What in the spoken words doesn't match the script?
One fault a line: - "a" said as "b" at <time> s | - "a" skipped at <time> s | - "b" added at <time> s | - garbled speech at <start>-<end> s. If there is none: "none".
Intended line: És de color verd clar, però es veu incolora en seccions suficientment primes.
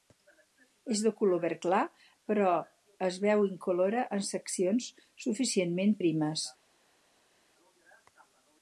none